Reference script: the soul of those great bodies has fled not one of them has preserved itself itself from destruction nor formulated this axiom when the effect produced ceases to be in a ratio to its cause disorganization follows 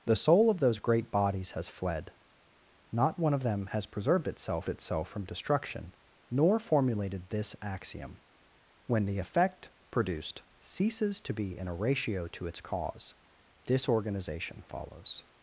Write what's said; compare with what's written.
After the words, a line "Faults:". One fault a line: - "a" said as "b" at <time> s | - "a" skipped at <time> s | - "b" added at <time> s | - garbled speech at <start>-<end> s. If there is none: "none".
the soul of those great bodies has fled not one of them has preserved itself itself from destruction nor formulated this axiom when the effect produced ceases to be in a ratio to its cause disorganization follows
Faults:
none